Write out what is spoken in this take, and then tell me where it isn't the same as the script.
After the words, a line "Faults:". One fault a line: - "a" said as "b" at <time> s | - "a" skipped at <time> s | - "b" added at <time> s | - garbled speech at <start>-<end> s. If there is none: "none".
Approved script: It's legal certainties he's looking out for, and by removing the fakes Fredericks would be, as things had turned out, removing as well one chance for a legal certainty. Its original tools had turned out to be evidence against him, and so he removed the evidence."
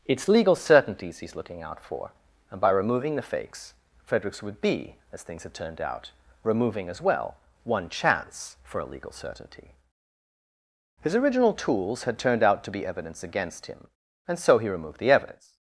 It's legal certainties he's looking out for, and by removing the fakes Fredericks would be, as things had turned out, removing as well one chance for a legal certainty. His original tools had turned out to be evidence against him, and so he removed the evidence."
Faults:
- "Its" said as "His" at 11.0 s